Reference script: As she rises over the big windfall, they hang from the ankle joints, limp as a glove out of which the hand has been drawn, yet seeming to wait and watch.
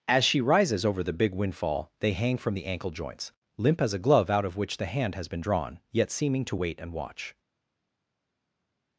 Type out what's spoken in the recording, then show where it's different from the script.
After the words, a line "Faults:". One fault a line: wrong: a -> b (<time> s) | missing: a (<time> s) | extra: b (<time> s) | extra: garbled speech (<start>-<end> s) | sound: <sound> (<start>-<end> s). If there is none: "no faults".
As she rises over the big windfall, they hang from the ankle joints, limp as a glove out of which the hand has been drawn, yet seeming to wait and watch.
Faults:
no faults